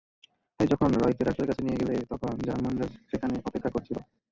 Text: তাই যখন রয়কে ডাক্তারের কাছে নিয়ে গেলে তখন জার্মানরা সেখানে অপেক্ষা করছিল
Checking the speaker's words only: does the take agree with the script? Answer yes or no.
yes